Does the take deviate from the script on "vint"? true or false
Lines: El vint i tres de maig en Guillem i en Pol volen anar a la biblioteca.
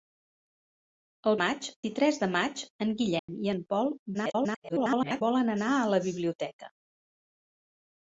true